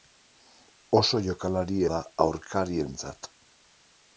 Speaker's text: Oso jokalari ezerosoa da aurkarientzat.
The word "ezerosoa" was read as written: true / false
false